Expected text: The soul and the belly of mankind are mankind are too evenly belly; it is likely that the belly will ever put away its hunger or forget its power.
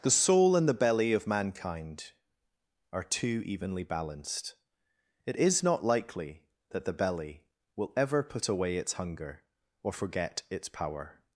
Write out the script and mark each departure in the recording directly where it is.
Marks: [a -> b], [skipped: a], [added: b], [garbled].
The soul and the belly of mankind are [skipped: mankind are] too evenly [belly; -> balanced] it is [added: not] likely that the belly will ever put away its hunger or forget its power.